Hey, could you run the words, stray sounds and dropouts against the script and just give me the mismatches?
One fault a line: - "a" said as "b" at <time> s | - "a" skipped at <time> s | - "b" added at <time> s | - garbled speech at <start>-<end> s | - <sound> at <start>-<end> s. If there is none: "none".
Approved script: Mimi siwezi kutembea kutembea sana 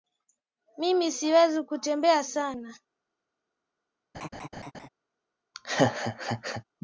- "kutembea" skipped at 2.2 s
- laugh at 4.1-4.9 s
- laugh at 5.5-6.6 s